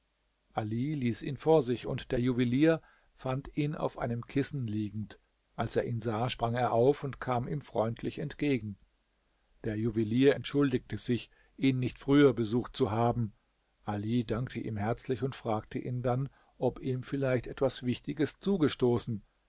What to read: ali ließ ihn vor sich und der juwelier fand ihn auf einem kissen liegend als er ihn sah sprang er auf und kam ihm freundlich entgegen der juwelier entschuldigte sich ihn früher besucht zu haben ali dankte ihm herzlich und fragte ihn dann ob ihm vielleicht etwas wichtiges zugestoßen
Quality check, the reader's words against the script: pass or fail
fail